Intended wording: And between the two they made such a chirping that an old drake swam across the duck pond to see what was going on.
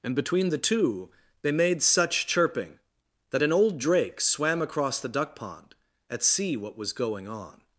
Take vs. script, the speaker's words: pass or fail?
fail